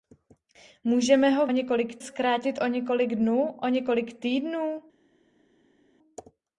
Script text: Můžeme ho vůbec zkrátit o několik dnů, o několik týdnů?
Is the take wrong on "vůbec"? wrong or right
wrong